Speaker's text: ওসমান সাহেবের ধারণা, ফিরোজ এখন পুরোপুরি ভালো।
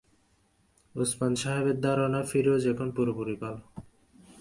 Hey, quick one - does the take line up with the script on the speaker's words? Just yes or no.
yes